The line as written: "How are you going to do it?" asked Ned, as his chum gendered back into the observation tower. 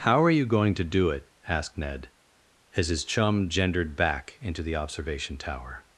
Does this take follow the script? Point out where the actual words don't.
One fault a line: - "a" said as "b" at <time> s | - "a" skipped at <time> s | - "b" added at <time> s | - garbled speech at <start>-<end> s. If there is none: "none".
none